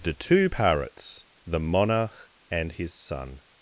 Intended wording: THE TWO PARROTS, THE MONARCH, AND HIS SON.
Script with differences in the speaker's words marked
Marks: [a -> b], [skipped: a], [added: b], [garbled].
THE TWO PARROTS, THE MONARCH, AND HIS SON.